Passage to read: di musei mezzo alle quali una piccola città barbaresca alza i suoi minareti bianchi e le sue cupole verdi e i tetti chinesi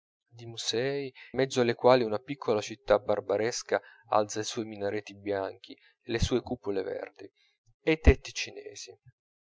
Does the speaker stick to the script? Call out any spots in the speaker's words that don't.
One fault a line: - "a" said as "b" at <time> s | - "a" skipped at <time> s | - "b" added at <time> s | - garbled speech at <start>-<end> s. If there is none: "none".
none